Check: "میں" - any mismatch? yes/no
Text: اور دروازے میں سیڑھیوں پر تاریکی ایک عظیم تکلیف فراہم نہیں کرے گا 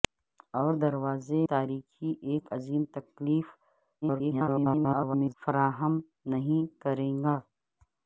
yes